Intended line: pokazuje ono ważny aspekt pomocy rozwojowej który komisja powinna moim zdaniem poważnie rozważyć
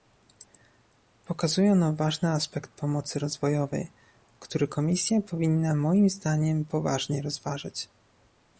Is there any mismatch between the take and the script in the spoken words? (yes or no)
no